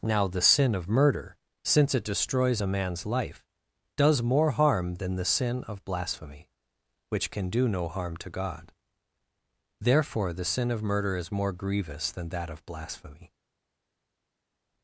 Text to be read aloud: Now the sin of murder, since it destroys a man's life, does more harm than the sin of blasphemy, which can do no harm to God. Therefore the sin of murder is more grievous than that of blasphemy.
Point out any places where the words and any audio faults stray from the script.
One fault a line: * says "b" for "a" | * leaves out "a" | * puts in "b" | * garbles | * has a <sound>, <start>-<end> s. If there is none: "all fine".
all fine